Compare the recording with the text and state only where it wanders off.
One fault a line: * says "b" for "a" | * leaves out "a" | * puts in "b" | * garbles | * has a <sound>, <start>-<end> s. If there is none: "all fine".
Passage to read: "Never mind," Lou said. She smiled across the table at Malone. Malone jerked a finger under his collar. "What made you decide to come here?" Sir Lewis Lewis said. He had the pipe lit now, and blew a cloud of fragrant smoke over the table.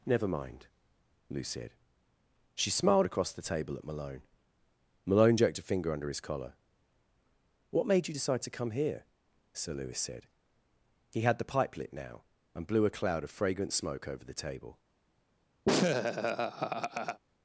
* leaves out "Lewis"
* has a laugh, 15.7-17.2 s